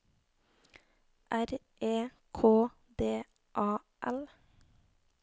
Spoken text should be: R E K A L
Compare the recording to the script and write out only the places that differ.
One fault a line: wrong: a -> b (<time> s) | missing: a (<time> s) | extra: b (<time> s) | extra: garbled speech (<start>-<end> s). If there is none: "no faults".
extra: D (3.0 s)